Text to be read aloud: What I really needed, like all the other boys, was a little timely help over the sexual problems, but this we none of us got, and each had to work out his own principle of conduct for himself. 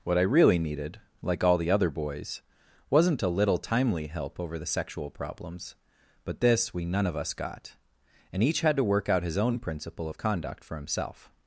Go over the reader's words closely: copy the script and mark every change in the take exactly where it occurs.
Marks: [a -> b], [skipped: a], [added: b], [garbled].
What I really needed, like all the other boys, [was -> wasn't] a little timely help over the sexual problems, but this we none of us got, and each had to work out his own principle of conduct for himself.